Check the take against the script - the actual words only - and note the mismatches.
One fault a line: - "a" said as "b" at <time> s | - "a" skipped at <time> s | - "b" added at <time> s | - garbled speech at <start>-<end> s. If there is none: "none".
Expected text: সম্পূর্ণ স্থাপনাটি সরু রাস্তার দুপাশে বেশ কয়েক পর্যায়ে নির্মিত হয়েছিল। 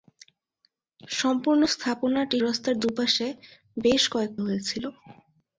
- "সরু" skipped at 2.4 s
- "পর্যায়ে নির্মিত" skipped at 4.3 s